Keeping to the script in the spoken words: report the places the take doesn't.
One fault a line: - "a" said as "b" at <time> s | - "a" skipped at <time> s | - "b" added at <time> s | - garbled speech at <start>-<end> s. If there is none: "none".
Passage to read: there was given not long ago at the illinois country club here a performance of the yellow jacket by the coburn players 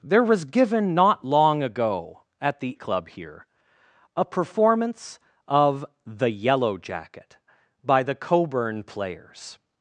- "illinois country" skipped at 2.7 s